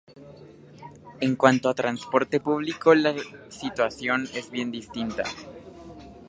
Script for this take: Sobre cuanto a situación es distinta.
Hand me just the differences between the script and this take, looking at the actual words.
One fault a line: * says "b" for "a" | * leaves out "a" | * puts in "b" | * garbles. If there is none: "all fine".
* says "En" for "Sobre"
* puts in "transporte público la"
* puts in "bien"